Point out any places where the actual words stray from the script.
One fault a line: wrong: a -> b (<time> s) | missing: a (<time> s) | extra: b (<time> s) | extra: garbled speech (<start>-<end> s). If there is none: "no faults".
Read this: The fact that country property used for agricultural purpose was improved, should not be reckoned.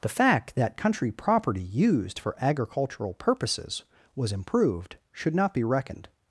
wrong: purpose -> purposes (3.1 s)